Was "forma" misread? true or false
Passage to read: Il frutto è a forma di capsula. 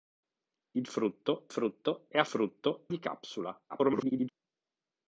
true